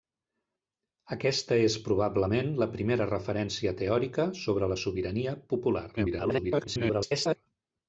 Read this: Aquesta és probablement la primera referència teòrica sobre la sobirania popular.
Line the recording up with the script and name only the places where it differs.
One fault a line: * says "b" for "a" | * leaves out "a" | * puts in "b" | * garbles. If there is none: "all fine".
* garbles